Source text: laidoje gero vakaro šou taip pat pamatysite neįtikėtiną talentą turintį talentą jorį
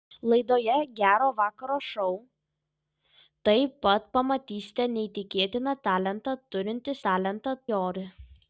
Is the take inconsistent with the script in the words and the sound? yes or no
no